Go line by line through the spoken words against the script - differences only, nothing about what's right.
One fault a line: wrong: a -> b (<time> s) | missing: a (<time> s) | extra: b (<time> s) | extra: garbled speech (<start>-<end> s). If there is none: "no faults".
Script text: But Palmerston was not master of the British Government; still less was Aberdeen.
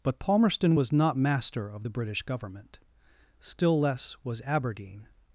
no faults